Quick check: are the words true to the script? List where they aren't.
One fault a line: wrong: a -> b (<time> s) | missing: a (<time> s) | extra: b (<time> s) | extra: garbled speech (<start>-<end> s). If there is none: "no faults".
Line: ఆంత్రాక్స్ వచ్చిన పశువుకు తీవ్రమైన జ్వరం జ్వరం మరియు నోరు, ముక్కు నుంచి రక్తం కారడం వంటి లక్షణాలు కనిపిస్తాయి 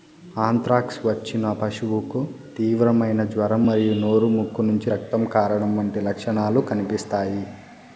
missing: జ్వరం (3.6 s)